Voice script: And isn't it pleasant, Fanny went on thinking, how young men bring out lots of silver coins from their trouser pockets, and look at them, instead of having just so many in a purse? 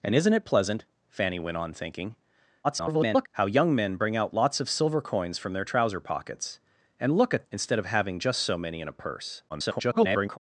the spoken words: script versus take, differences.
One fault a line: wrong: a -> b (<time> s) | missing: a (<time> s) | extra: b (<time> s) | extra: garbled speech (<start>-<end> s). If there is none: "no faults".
extra: garbled speech (2.6-3.3 s)
missing: them (7.4 s)
extra: garbled speech (9.5-10.4 s)